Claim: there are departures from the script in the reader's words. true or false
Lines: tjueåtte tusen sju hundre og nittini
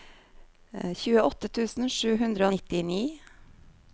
false